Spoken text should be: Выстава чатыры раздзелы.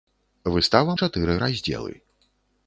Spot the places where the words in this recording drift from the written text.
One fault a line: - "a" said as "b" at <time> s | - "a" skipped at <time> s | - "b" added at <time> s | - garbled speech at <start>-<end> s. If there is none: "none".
none